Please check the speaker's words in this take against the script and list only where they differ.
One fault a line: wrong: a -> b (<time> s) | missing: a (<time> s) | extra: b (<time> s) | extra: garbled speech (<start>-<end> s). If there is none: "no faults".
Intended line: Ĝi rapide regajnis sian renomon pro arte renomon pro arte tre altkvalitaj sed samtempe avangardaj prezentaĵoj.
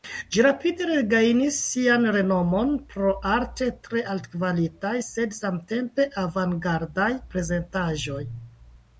missing: renomon pro arte (3.7 s)